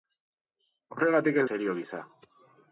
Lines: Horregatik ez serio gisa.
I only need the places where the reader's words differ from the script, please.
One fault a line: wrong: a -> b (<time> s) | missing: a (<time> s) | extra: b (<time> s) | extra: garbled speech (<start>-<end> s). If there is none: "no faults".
no faults